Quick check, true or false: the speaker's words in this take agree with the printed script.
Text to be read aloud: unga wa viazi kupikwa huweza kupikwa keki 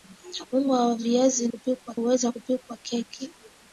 true